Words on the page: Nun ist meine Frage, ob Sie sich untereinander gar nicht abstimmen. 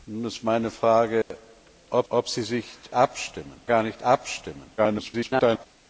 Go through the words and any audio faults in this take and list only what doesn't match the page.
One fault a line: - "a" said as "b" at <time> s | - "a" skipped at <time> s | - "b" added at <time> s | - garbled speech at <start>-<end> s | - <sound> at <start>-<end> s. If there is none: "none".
- dropout at 1.2-1.3 s
- "ob" added at 2.1 s
- "untereinander" said as "abstimmen" at 2.9 s
- garbled speech at 4.8-5.7 s